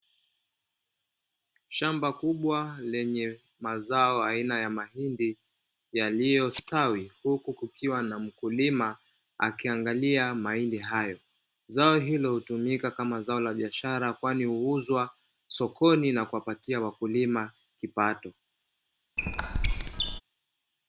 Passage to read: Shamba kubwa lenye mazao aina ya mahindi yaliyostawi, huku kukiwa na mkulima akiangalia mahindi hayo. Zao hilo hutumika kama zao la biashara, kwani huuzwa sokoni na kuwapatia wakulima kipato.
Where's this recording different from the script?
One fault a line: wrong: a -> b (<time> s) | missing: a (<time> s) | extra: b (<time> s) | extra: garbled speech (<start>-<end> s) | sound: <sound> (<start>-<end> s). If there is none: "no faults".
sound: squeak (19.2-20.2 s)